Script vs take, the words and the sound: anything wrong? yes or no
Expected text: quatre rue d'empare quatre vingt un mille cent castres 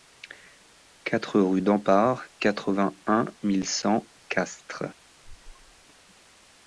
yes